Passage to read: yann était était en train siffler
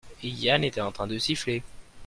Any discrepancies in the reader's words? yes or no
yes